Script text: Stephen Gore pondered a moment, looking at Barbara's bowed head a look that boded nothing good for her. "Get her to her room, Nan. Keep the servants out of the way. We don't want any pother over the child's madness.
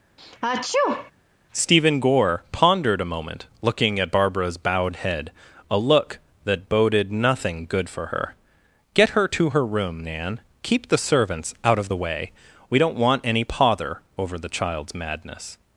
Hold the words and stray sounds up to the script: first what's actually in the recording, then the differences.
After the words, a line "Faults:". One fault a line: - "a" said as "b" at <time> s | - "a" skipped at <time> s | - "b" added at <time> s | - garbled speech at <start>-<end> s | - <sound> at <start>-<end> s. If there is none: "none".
Stephen Gore pondered a moment, looking at Barbara's bowed head a look that boded nothing good for her. "Get her to her room, Nan. Keep the servants out of the way. We don't want any pother over the child's madness.
Faults:
- sneeze at 0.2-1.1 s